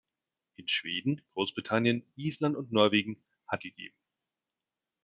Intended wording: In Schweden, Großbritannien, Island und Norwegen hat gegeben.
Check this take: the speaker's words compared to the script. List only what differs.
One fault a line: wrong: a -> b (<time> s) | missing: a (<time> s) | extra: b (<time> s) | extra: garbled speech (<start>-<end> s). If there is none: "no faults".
no faults